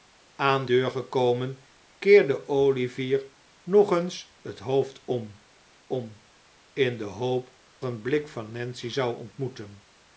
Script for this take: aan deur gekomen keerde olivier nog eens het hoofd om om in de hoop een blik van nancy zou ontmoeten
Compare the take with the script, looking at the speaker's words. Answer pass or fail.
pass